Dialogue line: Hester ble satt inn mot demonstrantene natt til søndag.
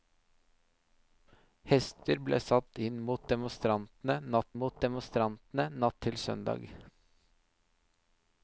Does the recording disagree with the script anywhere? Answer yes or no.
yes